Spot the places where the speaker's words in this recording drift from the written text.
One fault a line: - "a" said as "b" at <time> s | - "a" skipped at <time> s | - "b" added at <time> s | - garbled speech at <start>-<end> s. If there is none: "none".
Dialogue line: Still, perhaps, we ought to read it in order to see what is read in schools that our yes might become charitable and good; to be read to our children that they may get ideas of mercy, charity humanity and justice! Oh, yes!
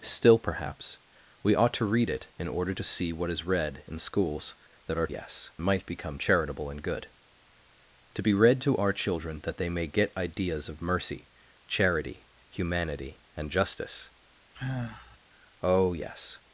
none